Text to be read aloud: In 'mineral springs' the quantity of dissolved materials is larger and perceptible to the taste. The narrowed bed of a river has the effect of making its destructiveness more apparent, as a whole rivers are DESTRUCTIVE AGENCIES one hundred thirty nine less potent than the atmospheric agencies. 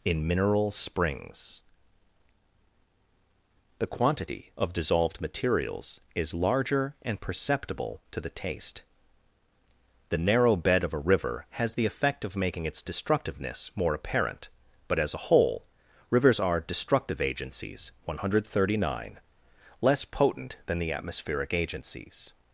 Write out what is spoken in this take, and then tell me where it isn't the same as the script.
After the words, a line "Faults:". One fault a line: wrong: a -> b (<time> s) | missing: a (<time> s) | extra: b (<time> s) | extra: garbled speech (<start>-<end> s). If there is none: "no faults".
In 'mineral springs' the quantity of dissolved materials is larger and perceptible to the taste. The narrow bed of a river has the effect of making its destructiveness more apparent, but as a whole rivers are DESTRUCTIVE AGENCIES one hundred thirty nine less potent than the atmospheric agencies.
Faults:
wrong: narrowed -> narrow (10.2 s)
extra: but (14.9 s)